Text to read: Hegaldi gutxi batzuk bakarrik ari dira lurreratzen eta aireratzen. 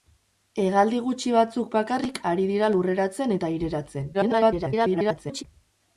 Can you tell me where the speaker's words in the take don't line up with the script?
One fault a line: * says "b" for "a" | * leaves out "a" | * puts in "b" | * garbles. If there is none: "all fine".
* garbles